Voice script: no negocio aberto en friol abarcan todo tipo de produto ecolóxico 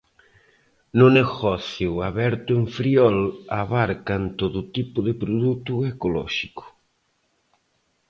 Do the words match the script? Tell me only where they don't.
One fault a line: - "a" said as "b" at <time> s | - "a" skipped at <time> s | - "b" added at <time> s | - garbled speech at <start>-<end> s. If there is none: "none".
none